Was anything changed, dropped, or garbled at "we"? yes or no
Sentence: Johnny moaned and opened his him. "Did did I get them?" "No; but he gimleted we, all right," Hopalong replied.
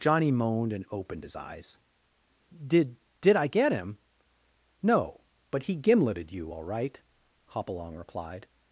yes